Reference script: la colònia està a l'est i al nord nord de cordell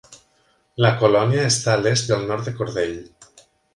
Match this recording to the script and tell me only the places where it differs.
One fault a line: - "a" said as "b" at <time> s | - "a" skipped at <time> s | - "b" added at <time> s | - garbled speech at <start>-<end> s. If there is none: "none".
- "nord" skipped at 2.5 s